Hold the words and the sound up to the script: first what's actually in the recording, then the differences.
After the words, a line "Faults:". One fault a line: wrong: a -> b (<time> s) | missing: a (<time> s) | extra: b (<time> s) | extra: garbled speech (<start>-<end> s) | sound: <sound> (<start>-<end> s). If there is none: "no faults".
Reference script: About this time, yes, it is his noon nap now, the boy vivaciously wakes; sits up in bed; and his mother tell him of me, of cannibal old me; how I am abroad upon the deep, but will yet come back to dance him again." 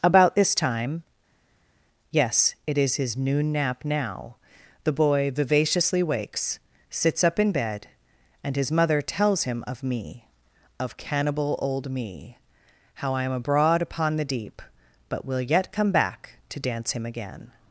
About this time, yes, it is his noon nap now, the boy vivaciously wakes; sits up in bed; and his mother tells him of me, of cannibal old me; how I am abroad upon the deep, but will yet come back to dance him again."
Faults:
wrong: tell -> tells (9.0 s)